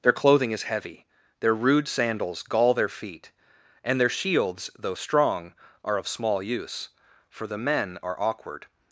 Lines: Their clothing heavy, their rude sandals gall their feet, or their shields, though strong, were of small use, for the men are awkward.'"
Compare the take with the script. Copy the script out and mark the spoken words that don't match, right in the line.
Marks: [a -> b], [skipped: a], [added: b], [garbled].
Their clothing [added: is] heavy, their rude sandals gall their feet, [or -> and] their shields, though strong, [were -> are] of small use, for the men are awkward.'"